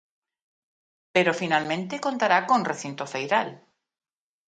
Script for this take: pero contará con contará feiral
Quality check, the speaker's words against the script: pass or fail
fail